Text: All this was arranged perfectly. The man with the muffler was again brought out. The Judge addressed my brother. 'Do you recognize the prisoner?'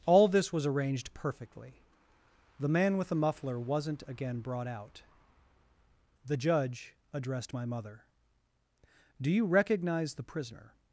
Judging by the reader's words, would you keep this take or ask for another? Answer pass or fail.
fail